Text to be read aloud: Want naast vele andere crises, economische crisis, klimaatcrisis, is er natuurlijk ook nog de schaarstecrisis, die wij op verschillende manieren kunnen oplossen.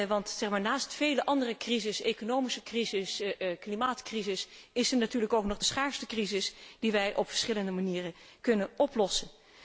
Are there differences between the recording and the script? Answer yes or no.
no